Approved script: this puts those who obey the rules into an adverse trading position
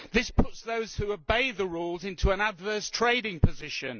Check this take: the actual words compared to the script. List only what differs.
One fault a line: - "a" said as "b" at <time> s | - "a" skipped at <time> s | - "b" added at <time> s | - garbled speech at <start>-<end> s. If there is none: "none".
none